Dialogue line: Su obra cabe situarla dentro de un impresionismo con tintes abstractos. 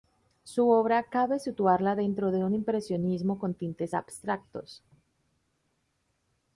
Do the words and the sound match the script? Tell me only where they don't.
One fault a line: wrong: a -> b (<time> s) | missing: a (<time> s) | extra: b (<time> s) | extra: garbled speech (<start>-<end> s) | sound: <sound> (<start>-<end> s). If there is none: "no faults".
no faults